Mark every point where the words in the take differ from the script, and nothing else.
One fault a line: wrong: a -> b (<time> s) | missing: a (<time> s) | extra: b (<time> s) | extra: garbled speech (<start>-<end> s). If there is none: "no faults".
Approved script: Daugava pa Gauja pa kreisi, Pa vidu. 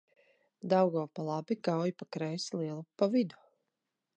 extra: labi (1.3 s)
extra: Lielupe (2.6 s)